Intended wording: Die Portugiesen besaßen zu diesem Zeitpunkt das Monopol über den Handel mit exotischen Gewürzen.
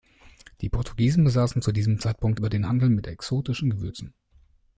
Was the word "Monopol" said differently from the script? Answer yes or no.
yes